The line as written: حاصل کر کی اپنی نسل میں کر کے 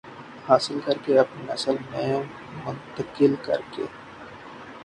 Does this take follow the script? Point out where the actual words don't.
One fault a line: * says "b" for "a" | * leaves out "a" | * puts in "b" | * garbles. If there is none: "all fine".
* says "کے" for "کی"
* puts in "منتقل"